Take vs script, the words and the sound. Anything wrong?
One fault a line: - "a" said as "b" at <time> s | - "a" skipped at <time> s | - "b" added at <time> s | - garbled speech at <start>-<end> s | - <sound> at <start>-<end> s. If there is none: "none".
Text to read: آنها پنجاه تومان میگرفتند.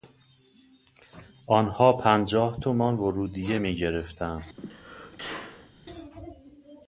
- "ورودیه" added at 2.9 s
- sneeze at 4.6-5.7 s